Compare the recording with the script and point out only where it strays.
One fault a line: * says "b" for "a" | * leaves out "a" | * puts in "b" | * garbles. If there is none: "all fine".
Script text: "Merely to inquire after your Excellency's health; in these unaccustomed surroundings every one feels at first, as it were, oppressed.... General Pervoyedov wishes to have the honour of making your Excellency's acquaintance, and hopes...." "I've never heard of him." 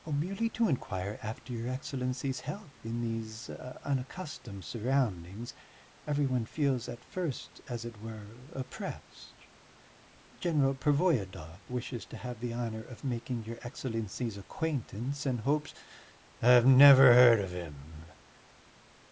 all fine